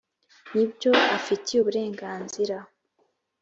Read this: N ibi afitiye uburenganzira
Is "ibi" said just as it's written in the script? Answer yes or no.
no